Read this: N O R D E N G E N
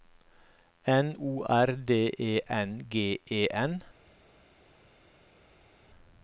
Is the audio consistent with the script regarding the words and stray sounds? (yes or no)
yes